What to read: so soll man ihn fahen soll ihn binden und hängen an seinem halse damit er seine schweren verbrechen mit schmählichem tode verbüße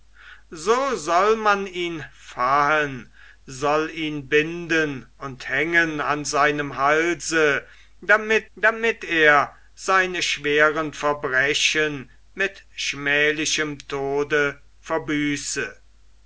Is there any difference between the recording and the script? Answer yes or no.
yes